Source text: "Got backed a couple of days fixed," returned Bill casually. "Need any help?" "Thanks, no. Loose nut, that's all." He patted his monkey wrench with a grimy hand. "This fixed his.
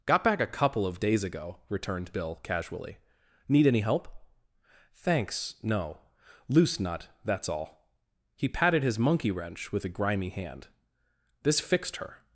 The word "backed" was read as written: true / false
false